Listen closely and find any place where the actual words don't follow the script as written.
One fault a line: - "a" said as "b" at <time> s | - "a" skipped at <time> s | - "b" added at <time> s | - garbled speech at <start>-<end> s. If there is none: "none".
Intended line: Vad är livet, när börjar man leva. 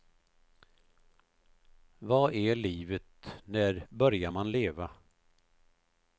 none